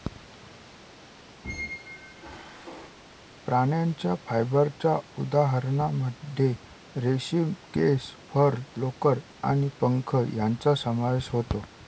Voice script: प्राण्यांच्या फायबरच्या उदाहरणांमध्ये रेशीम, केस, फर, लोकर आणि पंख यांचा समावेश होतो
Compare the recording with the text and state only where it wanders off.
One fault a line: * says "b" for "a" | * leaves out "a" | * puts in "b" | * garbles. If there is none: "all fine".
all fine